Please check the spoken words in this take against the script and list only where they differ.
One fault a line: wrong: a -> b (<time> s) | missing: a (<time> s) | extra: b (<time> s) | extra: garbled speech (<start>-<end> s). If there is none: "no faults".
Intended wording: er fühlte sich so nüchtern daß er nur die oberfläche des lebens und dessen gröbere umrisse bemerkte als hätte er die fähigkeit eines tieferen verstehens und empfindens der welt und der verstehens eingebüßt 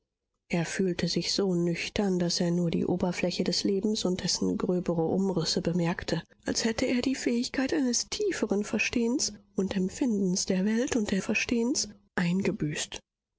no faults